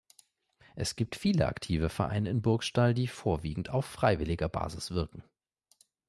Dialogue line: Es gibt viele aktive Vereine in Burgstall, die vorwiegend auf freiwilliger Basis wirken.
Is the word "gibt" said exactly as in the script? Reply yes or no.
yes